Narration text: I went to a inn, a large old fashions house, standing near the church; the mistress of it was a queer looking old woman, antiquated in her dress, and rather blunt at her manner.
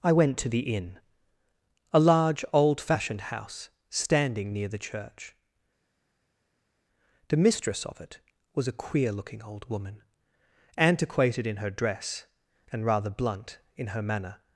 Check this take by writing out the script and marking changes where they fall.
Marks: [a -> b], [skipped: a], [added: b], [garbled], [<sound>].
I went to [a -> the] inn, a large old [fashions -> fashioned] house, standing near the church; the mistress of it was a queer looking old woman, antiquated in her dress, and rather blunt [at -> in] her manner.